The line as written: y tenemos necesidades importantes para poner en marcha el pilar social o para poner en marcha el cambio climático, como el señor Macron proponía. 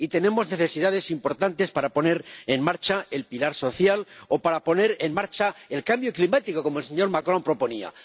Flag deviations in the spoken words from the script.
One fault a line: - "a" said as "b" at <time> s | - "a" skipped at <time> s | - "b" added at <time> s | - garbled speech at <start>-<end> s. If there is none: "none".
none